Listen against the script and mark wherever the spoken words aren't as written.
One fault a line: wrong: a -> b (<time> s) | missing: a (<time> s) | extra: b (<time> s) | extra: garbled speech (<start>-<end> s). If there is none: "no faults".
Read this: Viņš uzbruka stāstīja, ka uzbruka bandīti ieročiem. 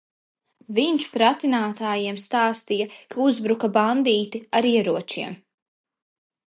wrong: uzbruka -> pratinātājiem (1.1 s)
extra: ar (4.6 s)